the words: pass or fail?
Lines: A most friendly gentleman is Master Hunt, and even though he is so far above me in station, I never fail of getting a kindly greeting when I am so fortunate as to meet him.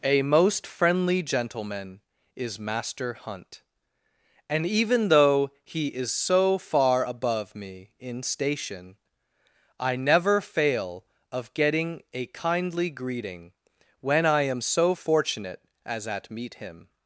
fail